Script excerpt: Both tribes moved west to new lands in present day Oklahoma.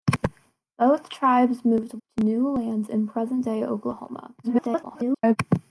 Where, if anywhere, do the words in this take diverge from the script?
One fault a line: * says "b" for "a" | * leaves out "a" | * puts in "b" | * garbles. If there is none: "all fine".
* leaves out "west"
* garbles